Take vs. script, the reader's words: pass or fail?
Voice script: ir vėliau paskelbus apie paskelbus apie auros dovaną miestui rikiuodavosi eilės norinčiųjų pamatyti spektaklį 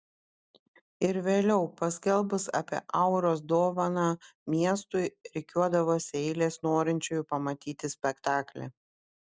fail